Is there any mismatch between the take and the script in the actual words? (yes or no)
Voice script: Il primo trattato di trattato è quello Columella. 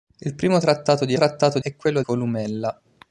no